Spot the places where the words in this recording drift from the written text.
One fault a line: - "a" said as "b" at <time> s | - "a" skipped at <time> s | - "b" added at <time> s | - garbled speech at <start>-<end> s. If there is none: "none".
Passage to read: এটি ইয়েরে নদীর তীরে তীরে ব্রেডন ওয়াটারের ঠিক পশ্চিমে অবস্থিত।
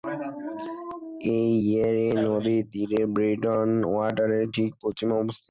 - "তীরে" skipped at 3.0 s